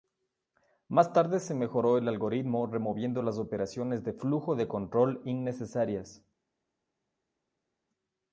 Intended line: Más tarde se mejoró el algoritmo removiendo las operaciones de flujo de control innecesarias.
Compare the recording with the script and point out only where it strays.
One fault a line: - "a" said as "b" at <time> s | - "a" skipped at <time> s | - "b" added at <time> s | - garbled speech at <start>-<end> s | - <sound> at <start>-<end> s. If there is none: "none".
none